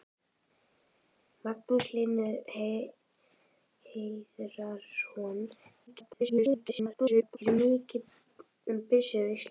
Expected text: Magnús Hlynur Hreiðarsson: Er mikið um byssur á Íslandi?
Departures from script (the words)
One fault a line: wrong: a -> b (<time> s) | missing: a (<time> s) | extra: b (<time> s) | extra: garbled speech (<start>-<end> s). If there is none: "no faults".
extra: garbled speech (5.9-7.4 s)